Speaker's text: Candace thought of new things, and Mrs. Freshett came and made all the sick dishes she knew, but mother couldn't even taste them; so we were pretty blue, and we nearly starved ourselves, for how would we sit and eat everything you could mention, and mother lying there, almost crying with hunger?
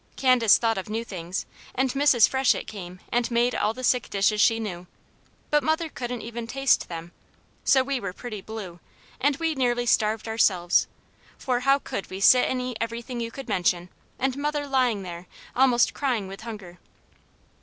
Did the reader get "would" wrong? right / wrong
wrong